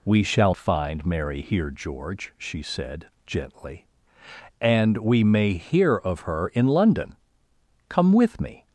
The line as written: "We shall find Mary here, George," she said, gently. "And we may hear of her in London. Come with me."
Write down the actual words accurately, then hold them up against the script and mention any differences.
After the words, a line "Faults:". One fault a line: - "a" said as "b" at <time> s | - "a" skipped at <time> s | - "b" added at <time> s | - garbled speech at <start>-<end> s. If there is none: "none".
"We shall find Mary here, George," she said, gently. "And we may hear of her in London. Come with me."
Faults:
none